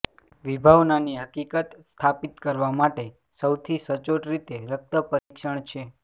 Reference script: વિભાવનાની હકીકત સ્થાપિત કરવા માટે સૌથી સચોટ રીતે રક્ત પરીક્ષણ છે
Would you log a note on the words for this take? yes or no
no